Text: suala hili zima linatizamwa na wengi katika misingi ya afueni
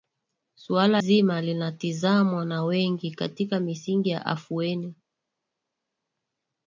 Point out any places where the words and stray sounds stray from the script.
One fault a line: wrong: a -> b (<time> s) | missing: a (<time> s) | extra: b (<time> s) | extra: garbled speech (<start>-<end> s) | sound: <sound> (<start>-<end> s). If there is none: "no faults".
missing: hili (1.0 s)